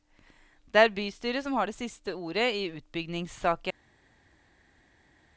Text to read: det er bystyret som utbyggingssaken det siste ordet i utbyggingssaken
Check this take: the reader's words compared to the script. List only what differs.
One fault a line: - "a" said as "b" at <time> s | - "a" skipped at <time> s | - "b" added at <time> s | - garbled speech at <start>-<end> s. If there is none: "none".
- "utbyggingssaken" said as "har" at 1.5 s